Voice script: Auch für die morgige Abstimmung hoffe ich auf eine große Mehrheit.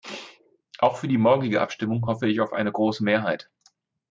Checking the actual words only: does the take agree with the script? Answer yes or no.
yes